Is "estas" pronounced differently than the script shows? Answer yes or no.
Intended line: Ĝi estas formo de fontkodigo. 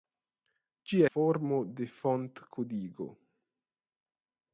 yes